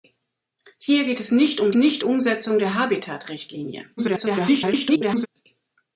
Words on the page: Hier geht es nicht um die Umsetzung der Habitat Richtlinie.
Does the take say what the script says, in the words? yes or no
no